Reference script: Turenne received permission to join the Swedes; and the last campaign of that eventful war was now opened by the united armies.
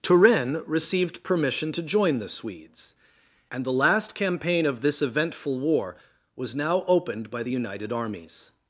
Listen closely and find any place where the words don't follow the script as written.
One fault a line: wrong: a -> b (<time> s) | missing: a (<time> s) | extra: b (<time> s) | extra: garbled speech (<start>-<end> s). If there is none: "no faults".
wrong: that -> this (4.8 s)